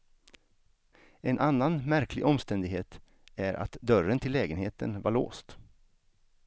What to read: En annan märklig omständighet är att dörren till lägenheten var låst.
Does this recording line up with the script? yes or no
yes